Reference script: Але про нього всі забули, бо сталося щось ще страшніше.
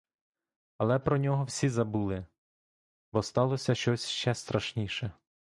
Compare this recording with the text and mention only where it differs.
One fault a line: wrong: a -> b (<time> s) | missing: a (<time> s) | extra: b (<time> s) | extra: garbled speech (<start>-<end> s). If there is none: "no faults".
no faults